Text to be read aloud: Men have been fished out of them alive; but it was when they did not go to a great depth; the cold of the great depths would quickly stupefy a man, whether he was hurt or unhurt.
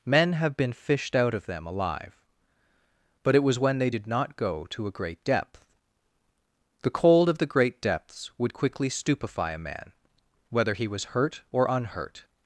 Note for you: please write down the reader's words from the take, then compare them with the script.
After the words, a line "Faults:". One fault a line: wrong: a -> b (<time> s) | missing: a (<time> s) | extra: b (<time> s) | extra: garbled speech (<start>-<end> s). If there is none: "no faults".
Men have been fished out of them alive; but it was when they did not go to a great depth; the cold of the great depths would quickly stupefy a man, whether he was hurt or unhurt.
Faults:
no faults